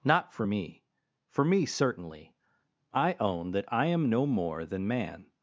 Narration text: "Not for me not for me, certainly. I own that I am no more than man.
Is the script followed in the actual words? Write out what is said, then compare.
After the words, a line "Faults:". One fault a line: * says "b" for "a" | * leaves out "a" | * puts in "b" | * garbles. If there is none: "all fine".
"Not for me for me, certainly. I own that I am no more than man.
Faults:
* leaves out "not"